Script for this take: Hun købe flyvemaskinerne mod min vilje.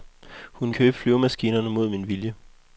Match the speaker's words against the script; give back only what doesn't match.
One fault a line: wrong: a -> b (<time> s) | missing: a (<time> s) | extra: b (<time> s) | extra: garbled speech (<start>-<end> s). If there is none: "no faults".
no faults